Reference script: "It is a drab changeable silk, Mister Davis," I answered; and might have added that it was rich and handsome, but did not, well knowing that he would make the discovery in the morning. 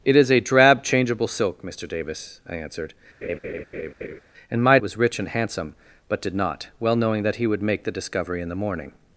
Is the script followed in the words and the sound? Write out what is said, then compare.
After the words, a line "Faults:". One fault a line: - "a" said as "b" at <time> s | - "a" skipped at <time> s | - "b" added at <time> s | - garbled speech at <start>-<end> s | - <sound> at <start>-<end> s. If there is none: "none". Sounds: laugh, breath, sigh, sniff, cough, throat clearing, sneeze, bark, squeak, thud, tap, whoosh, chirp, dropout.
"It is a drab changeable silk, Mister Davis," I answered; and might it was rich and handsome, but did not, well knowing that he would make the discovery in the morning.
Faults:
- laugh at 3.2-4.2 s
- "have added that" skipped at 4.8 s